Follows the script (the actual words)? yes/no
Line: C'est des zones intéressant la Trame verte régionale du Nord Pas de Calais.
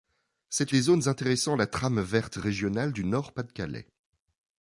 yes